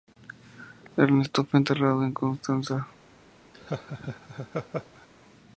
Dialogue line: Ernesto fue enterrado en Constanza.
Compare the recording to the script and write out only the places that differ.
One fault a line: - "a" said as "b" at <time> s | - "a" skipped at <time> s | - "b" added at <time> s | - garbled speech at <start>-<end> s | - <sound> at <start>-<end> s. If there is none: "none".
- laugh at 3.5-5.1 s